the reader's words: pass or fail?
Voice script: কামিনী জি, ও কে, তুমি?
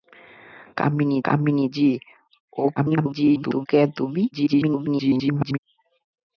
fail